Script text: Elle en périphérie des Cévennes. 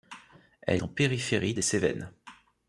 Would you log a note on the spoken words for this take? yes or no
no